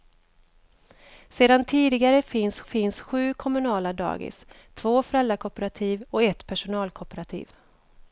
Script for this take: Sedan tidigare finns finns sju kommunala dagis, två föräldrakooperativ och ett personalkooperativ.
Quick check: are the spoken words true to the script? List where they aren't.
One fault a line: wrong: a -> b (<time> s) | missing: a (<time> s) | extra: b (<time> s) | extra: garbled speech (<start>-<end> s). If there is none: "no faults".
no faults